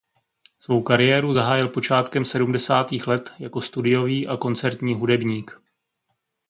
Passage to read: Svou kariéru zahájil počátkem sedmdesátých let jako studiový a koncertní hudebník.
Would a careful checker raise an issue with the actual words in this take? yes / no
no